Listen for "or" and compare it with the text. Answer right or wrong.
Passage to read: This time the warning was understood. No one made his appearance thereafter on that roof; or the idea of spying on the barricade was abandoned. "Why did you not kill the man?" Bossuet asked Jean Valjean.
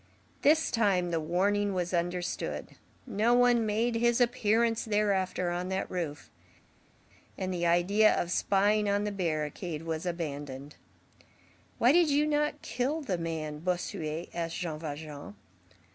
wrong